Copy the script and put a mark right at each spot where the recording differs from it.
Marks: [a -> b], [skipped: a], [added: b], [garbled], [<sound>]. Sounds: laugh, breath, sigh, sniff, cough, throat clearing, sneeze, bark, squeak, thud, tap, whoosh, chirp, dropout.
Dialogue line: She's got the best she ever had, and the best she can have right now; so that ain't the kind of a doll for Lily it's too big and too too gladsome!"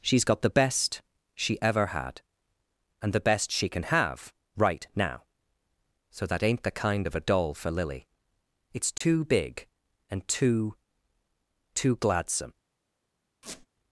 She's got the best she ever had, and the best she can have right now; so that ain't the kind of a doll for Lily it's too [dropout] big and too too gladsome!" [squeak]